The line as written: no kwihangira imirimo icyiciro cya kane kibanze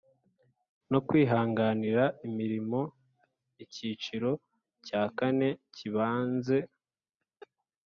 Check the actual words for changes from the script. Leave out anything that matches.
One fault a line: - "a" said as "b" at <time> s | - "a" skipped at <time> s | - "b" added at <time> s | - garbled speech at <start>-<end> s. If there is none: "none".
none